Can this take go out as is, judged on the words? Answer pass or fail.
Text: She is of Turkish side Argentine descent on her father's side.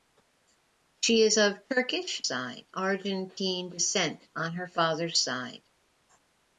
pass